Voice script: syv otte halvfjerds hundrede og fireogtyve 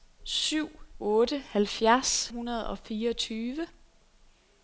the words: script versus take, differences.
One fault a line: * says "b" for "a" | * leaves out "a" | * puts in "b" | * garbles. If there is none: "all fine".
all fine